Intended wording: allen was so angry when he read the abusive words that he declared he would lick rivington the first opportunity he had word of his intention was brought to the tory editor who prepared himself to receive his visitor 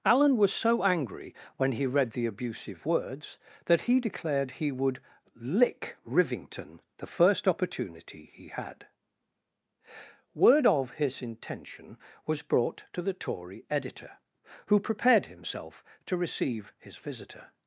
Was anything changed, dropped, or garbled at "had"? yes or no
no